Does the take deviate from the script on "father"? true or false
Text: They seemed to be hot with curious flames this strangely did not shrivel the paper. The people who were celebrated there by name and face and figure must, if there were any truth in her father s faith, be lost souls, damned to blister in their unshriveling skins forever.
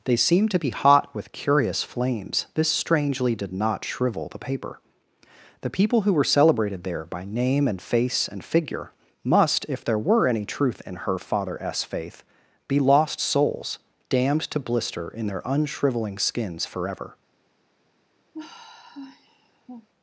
false